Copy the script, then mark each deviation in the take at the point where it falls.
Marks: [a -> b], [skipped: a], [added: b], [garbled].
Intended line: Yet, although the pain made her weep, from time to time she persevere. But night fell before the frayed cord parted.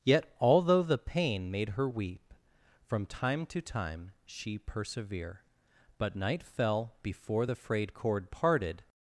Yet, although the pain made her weep, from time to time she persevere. But night fell before the frayed cord parted.